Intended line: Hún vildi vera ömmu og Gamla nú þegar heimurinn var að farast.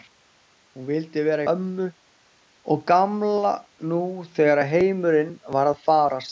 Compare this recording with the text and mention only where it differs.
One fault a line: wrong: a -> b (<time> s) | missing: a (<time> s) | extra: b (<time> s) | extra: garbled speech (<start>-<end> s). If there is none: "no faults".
no faults